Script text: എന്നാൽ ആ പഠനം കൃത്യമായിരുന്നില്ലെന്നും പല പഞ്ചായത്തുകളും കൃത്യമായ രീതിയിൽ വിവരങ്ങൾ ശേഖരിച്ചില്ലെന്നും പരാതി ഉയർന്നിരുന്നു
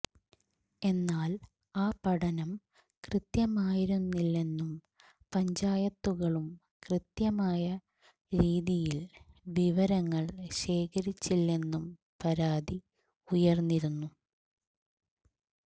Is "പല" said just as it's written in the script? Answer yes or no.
no